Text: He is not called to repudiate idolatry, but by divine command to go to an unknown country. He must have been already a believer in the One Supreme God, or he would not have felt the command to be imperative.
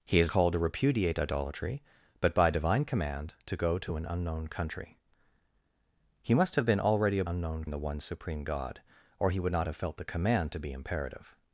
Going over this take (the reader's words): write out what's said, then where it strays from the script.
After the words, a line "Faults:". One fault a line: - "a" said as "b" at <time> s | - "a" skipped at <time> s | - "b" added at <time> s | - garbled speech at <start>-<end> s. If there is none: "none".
He is called to repudiate idolatry, but by divine command to go to an unknown country. He must have been already a unknown in the One Supreme God, or he would not have felt the command to be imperative.
Faults:
- "not" skipped at 0.3 s
- "believer" said as "unknown" at 7.2 s